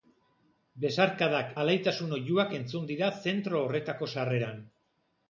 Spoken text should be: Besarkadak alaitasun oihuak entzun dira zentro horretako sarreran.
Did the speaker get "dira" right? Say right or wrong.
right